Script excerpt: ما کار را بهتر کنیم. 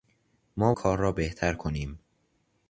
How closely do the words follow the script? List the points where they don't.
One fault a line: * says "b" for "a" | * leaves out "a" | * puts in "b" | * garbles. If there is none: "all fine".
all fine